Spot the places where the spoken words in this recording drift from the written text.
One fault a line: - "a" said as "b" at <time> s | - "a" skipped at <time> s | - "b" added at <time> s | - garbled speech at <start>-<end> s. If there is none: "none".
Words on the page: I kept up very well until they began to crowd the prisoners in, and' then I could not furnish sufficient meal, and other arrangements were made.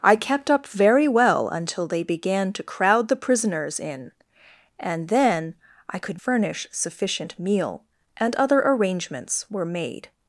- "not" skipped at 6.2 s